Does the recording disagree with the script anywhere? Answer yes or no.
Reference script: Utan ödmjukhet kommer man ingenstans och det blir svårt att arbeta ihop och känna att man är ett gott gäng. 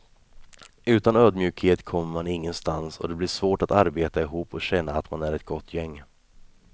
no